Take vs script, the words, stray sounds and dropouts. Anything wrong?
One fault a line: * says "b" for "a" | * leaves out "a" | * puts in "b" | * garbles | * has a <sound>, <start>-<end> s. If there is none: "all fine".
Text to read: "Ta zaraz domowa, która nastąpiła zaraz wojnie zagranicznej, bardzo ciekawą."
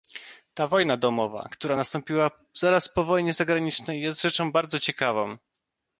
* says "wojna" for "zaraz"
* puts in "po"
* puts in "jest rzeczą"